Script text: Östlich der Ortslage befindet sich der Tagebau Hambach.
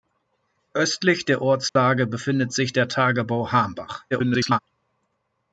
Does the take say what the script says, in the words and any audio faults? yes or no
no